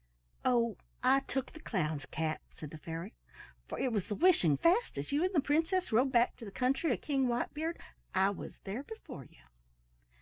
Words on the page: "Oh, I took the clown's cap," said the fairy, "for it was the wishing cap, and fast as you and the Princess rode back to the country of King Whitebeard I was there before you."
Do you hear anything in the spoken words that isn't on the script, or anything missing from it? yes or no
yes